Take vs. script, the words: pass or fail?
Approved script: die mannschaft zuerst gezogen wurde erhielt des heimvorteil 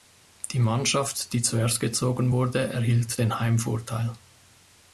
fail